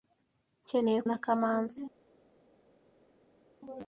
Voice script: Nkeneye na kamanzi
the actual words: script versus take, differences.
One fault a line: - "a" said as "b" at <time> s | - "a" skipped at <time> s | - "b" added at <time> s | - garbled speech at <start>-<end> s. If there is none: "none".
none